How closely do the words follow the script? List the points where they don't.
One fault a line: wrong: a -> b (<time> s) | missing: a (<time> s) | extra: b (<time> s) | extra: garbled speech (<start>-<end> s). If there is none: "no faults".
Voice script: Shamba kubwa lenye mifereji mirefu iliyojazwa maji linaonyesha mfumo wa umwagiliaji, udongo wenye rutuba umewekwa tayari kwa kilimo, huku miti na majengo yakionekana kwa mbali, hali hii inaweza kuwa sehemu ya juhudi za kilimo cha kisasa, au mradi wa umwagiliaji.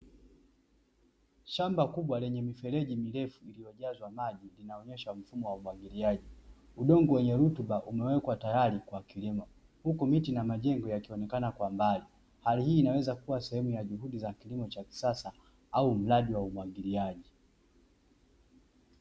no faults